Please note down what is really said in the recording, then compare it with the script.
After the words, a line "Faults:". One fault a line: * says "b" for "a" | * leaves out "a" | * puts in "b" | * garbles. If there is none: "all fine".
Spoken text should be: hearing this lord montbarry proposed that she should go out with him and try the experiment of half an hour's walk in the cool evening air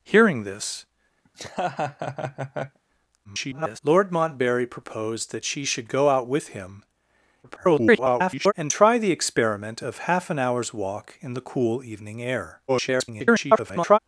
hearing this [garbled] lord montbarry proposed that she should go out with him [garbled] and try the experiment of half an hour's walk in the cool evening air [garbled]
Faults:
* garbles
* garbles
* garbles